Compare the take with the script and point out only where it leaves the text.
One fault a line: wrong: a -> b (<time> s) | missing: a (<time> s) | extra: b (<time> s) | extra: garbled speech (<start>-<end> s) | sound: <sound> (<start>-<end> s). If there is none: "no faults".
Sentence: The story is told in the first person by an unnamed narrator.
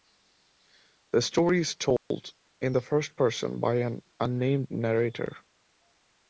sound: dropout (2.0-2.1 s)